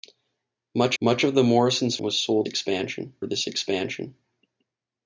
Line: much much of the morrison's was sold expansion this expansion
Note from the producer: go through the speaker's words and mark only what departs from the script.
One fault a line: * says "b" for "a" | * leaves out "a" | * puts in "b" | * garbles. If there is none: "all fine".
all fine